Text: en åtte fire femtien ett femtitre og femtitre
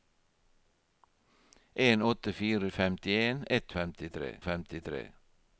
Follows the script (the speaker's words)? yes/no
yes